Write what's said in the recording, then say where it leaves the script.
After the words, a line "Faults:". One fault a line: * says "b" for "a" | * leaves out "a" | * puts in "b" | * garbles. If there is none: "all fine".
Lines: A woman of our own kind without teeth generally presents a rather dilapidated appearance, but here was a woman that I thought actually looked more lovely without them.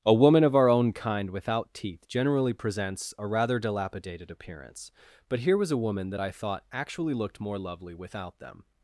A woman of our own kind without teeth generally presents a rather dilapidated appearance, but here was a woman that I thought actually looked more lovely without them.
Faults:
all fine